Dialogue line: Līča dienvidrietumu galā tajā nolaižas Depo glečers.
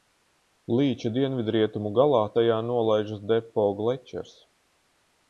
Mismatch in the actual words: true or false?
false